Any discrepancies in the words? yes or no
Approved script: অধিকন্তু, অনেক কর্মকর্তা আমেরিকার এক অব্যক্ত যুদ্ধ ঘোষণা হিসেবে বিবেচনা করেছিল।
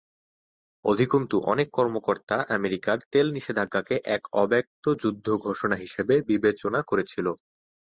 yes